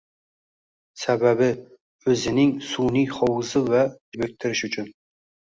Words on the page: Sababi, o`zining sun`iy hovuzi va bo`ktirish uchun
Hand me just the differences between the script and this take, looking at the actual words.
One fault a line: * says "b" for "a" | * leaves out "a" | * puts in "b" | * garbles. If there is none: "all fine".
all fine